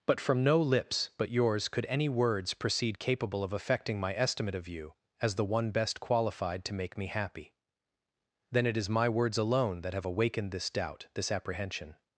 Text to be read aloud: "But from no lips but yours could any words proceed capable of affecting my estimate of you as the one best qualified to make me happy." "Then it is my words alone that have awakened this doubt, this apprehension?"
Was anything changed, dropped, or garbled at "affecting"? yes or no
no